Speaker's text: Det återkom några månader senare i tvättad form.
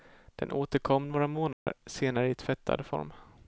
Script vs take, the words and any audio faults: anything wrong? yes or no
yes